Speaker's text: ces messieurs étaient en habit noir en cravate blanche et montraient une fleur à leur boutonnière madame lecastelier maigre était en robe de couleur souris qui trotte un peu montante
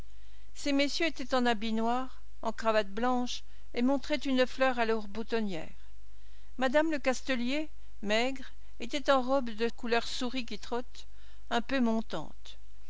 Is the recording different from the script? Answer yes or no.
no